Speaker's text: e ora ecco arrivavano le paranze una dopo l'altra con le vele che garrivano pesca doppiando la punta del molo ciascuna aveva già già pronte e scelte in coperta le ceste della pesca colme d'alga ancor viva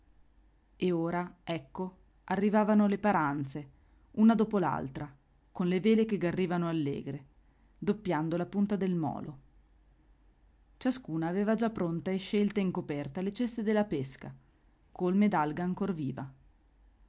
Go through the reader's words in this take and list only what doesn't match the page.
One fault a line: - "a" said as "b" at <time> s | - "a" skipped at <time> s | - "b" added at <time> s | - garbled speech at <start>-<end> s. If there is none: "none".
- "pesca" said as "allegre" at 6.7 s
- "già" skipped at 11.7 s